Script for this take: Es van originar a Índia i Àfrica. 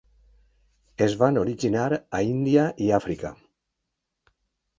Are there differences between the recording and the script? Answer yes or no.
no